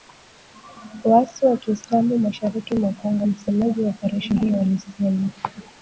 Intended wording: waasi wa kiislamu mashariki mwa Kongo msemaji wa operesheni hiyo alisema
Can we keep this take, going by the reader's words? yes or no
yes